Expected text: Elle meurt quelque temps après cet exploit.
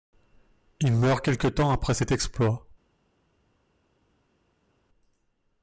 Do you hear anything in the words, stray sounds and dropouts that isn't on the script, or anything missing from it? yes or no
yes